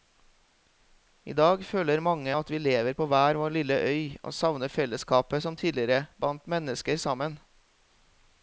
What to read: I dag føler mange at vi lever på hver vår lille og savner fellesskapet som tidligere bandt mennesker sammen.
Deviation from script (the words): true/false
true